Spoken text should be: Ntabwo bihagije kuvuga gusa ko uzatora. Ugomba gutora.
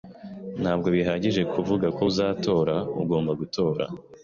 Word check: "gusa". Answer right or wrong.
wrong